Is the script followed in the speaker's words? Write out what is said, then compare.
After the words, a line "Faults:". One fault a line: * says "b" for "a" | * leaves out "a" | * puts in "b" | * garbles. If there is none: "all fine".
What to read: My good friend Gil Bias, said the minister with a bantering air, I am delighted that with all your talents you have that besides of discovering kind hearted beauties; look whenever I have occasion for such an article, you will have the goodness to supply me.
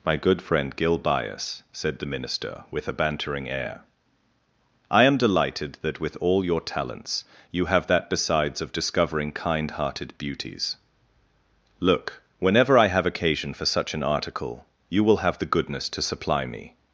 My good friend Gil Bias, said the minister with a bantering air, I am delighted that with all your talents you have that besides of discovering kind hearted beauties; look whenever I have occasion for such an article, you will have the goodness to supply me.
Faults:
all fine